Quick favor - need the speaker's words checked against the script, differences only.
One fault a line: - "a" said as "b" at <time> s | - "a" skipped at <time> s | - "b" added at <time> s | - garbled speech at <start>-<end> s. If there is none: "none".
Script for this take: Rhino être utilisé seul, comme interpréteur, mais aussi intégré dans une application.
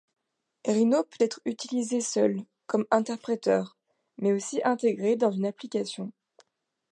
- "peut" added at 1.0 s